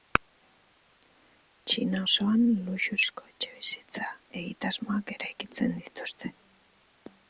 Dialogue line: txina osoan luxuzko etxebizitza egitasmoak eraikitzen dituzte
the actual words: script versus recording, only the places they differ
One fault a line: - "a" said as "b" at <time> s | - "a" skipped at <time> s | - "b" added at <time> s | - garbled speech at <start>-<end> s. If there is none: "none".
none